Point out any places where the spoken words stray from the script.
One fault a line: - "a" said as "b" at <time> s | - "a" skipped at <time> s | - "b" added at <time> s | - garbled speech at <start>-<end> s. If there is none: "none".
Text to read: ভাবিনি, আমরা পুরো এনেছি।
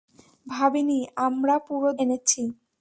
none